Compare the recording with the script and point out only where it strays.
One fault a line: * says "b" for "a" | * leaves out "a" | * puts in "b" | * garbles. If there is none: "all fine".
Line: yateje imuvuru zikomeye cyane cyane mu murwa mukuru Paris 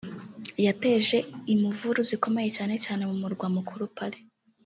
all fine